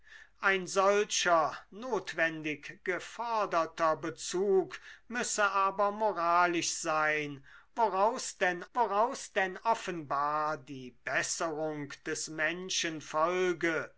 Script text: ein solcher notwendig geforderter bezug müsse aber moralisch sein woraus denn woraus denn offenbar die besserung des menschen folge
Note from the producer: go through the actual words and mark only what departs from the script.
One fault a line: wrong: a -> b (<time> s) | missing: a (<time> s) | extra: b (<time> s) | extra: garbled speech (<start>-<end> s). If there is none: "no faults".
no faults